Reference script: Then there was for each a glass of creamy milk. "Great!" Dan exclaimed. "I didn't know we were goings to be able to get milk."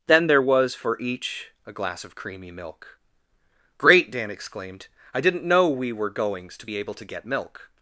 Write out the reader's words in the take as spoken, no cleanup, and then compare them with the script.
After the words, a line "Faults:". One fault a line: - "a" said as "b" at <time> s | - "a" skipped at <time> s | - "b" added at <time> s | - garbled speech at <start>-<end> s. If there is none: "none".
Then there was for each a glass of creamy milk. "Great!" Dan exclaimed. "I didn't know we were goings to be able to get milk."
Faults:
none